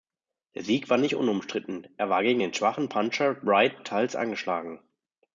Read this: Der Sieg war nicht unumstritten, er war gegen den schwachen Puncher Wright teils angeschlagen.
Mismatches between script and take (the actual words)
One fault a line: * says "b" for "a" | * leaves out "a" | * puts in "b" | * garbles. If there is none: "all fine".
all fine